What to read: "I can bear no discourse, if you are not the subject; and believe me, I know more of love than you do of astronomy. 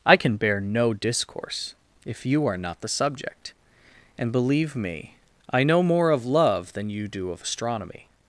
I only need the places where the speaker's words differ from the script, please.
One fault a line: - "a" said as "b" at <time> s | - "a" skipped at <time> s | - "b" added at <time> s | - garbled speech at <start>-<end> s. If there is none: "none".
none